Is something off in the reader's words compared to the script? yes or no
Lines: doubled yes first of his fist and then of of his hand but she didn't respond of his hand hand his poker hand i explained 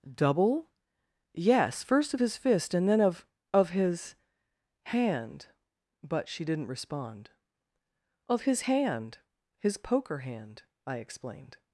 yes